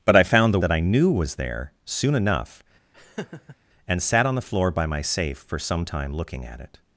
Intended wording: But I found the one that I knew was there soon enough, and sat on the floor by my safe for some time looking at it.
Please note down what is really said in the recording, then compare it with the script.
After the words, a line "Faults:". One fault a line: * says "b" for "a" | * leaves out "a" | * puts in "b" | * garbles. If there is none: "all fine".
But I found the that I knew was there soon enough, and sat on the floor by my safe for some time looking at it.
Faults:
* leaves out "one"